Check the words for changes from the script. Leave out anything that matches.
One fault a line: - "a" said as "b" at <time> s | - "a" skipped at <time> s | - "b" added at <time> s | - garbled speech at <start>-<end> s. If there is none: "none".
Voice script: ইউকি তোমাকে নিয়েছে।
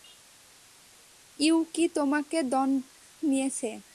none